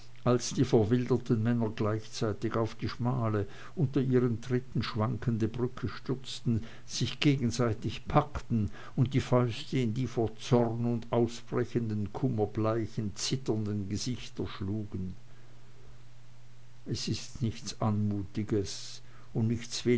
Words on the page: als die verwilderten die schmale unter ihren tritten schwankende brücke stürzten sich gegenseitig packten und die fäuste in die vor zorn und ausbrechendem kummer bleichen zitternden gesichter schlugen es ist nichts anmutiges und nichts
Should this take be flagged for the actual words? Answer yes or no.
yes